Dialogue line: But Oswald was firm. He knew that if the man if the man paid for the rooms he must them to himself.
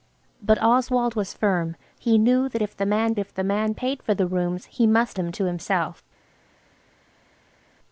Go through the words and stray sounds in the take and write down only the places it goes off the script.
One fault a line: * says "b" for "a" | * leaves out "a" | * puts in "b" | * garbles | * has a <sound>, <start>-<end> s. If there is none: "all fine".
all fine